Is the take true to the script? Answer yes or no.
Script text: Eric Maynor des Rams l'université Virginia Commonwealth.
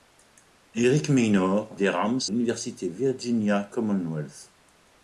yes